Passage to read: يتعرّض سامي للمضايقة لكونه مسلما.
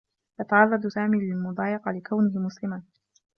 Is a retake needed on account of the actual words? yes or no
no